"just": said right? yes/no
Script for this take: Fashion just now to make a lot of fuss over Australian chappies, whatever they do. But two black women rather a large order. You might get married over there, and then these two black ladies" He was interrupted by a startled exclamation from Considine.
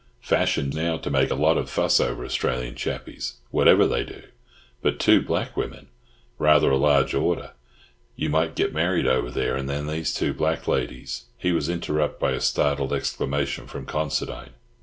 no